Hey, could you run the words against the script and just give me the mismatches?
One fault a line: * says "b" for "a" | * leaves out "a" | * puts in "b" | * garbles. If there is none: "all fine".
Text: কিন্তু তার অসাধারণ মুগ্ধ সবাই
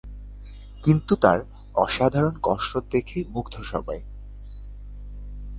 * puts in "কসরত দেখে"